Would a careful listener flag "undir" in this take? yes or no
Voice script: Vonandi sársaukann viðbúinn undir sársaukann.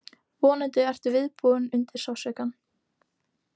no